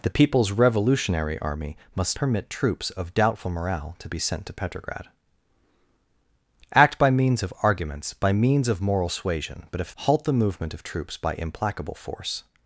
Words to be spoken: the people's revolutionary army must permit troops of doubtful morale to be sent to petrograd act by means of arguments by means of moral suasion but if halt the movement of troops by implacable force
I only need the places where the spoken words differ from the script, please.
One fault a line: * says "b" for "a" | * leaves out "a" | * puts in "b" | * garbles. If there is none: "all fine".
all fine